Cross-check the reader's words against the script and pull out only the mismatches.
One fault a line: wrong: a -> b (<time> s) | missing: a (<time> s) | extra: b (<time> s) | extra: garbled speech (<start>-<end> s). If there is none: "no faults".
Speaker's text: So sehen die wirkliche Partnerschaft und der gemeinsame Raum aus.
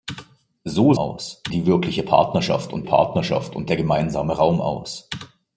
wrong: sehen -> aus (0.9 s)
extra: Partnerschaft und (2.8 s)